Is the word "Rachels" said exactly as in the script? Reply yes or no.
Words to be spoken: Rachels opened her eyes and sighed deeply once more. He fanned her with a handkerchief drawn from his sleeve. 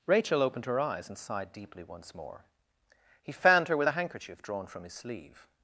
no